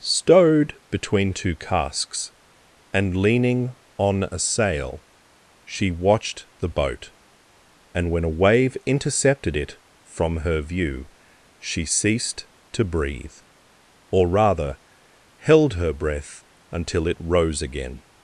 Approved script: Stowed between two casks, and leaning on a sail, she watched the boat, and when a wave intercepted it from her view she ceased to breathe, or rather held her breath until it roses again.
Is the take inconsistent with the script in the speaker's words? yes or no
yes